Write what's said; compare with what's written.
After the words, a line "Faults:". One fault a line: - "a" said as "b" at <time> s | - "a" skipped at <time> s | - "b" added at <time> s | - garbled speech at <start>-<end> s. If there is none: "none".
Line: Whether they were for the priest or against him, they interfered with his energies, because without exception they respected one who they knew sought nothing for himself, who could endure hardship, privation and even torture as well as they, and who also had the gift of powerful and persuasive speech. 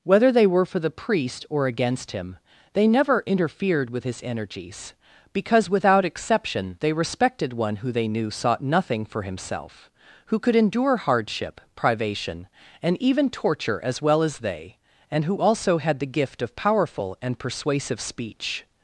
Whether they were for the priest or against him, they never interfered with his energies, because without exception they respected one who they knew sought nothing for himself, who could endure hardship, privation and even torture as well as they, and who also had the gift of powerful and persuasive speech.
Faults:
- "never" added at 2.9 s